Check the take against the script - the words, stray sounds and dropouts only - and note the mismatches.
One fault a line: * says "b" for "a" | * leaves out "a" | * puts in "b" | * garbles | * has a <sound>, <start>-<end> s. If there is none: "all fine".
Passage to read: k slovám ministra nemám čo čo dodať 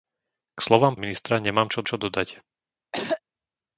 * has a throat clearing, 2.9-3.2 s